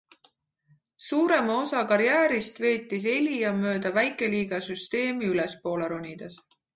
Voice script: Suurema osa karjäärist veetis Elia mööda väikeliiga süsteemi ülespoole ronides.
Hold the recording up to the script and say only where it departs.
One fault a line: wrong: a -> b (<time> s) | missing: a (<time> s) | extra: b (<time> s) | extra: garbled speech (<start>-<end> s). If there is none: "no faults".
no faults